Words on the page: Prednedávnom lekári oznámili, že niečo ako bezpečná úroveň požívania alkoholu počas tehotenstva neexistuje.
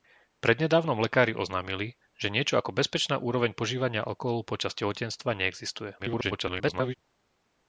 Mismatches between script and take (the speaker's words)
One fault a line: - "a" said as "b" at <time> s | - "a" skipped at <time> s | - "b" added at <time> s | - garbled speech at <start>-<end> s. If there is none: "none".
- garbled speech at 6.0-6.9 s